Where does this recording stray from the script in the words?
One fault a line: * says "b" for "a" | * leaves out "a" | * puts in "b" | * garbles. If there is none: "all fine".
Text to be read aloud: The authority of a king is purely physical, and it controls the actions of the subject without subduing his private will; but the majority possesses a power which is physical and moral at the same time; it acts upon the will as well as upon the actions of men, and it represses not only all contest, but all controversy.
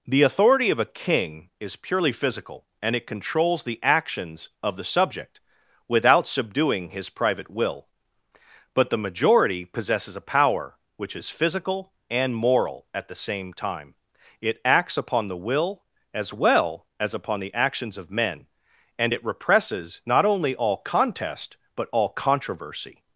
all fine